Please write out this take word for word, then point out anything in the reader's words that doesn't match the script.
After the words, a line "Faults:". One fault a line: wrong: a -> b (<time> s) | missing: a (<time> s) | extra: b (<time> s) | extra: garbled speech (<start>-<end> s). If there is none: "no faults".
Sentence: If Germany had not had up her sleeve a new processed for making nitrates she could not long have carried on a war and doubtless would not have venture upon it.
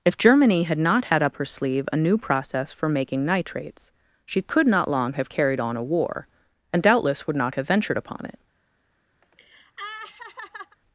If Germany had not had up her sleeve a new process for making nitrates she could not long have carried on a war and doubtless would not have ventured upon it.
Faults:
wrong: processed -> process (2.2 s)
wrong: venture -> ventured (7.7 s)